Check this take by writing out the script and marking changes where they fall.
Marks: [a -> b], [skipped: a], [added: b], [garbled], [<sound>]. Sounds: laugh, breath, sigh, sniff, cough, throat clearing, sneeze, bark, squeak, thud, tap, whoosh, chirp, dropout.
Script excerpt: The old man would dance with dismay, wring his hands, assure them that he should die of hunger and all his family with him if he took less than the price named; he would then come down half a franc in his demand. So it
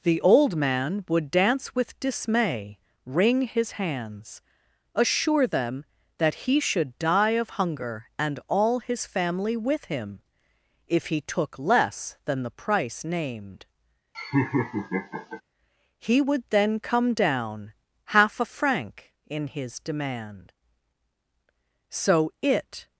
The old man would dance with dismay, wring his hands, assure them that he should die of hunger and all his family with him if he took less than the price named; [laugh] he would then come down half a franc in his demand. So it